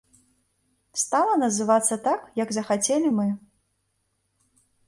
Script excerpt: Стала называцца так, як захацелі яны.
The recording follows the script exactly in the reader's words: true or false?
false